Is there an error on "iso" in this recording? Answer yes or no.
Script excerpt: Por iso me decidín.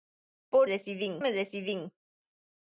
yes